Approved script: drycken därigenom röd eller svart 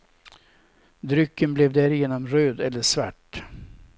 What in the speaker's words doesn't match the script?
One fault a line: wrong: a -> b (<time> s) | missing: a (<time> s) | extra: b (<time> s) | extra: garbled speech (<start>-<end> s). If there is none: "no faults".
extra: blev (1.5 s)